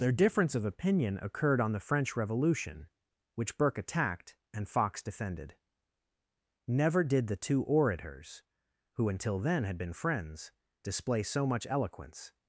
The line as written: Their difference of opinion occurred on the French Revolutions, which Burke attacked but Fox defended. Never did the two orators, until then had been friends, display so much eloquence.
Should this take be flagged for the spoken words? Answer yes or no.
yes